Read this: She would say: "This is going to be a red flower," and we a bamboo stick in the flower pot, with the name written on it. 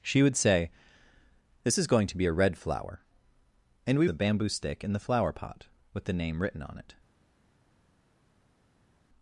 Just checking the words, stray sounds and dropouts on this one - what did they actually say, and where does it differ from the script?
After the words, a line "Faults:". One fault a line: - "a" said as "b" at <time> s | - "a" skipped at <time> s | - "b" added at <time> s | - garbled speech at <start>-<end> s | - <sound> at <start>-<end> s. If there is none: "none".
She would say: "This is going to be a red flower," and we a bamboo stick in the flower pot, with the name written on it.
Faults:
none